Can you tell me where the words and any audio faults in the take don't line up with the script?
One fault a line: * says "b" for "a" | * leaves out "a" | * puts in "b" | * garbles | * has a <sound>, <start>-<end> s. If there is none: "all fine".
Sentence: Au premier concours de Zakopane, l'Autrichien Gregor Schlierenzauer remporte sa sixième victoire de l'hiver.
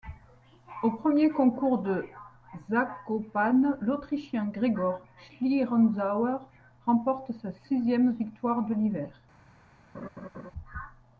* has a laugh, 9.9-10.5 s